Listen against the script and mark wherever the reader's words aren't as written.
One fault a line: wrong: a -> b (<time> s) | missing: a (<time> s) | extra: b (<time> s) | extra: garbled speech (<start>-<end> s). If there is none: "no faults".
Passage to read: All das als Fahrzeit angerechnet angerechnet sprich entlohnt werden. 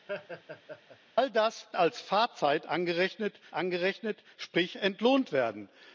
no faults